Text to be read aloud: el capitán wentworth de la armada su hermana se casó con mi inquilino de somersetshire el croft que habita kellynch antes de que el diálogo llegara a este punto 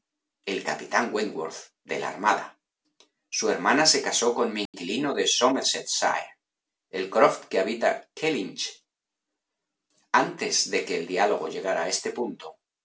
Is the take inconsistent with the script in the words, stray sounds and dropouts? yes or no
yes